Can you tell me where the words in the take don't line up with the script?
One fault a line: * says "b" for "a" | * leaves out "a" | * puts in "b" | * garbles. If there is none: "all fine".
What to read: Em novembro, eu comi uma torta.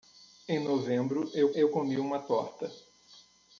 * puts in "eu"